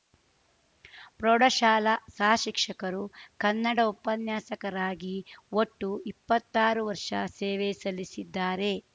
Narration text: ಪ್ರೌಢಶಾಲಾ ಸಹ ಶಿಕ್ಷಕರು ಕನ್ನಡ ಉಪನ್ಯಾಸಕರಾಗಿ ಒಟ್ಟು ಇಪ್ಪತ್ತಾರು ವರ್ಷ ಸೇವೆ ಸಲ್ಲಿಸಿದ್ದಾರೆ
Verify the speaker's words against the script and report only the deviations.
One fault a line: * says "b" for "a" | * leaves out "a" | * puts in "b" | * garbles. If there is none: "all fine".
all fine